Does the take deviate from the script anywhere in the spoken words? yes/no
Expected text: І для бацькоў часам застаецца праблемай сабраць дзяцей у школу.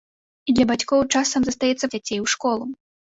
yes